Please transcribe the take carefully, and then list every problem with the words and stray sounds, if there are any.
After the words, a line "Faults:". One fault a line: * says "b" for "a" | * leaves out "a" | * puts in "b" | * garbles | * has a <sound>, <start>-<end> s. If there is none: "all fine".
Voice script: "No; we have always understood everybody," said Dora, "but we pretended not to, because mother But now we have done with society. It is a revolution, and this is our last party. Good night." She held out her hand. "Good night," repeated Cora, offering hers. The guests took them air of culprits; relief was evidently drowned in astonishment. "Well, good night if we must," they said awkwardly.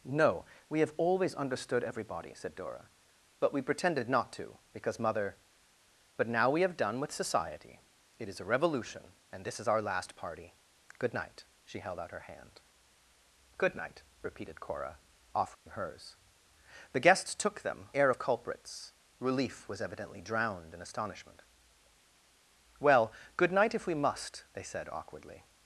"No; we have always understood everybody," said Dora, "but we pretended not to, because mother But now we have done with society. It is a revolution, and this is our last party. Good night." She held out her hand. "Good night," repeated Cora, offering hers. The guests took them air of culprits; relief was evidently drowned in astonishment. "Well, good night if we must," they said awkwardly.
Faults:
* has a dropout, 15.5-15.7 s